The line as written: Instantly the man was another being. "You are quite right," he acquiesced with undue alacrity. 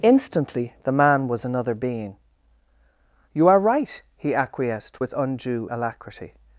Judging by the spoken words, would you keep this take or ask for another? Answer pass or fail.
fail